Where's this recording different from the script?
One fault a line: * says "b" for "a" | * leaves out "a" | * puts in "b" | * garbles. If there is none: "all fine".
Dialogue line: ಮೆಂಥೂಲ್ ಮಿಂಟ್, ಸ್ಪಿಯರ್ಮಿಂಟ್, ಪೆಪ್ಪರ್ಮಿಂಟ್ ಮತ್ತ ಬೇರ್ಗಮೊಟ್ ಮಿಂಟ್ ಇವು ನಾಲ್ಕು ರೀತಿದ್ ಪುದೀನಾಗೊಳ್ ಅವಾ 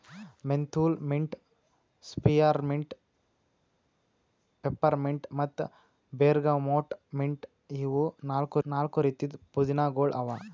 * puts in "ನಾಲ್ಕು"